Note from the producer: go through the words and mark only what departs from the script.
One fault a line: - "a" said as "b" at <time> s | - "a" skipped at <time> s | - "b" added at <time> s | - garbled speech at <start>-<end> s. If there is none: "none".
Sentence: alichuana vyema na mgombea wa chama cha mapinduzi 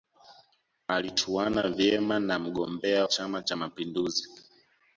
- "wa" skipped at 3.1 s